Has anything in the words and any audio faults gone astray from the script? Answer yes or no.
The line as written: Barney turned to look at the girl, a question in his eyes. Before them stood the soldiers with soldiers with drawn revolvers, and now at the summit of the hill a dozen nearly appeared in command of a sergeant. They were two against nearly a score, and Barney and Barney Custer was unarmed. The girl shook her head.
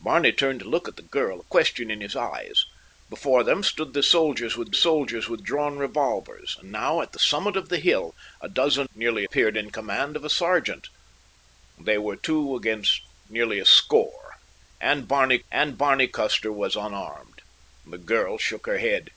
no